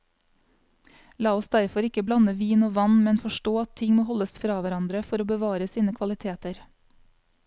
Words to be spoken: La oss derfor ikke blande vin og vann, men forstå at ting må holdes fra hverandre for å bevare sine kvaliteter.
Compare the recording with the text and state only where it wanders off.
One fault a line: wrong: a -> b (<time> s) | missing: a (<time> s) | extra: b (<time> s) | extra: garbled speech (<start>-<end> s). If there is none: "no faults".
no faults